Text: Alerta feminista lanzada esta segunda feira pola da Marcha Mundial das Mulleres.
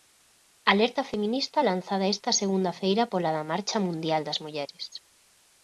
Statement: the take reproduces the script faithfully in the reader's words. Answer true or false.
true